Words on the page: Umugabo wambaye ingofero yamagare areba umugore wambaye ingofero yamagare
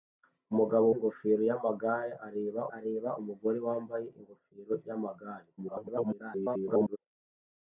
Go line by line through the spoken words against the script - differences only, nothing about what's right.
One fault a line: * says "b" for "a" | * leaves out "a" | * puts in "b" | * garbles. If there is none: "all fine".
* leaves out "wambaye"
* puts in "areba"
* garbles